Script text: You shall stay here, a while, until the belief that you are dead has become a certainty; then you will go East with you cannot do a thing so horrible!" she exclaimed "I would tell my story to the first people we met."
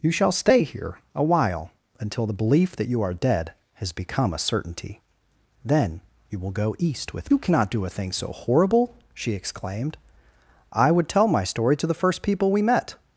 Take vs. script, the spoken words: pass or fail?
pass